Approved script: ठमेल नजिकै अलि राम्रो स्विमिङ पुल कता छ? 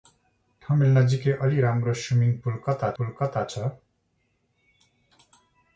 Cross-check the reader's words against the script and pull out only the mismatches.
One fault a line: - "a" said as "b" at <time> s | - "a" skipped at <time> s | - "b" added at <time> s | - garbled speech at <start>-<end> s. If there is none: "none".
- "पुल कता" added at 3.0 s